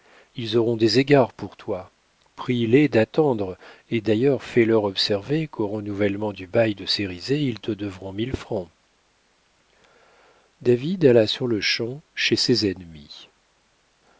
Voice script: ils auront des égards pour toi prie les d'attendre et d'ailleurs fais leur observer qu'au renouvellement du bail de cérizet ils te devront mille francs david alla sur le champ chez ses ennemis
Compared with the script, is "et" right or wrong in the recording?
right